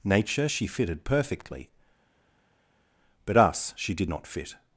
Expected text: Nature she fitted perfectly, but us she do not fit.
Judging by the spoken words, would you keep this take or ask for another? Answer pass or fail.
fail